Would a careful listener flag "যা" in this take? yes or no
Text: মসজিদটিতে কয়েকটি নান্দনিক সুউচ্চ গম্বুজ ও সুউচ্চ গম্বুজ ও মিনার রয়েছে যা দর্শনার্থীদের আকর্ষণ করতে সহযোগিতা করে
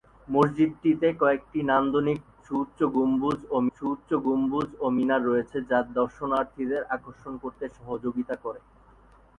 no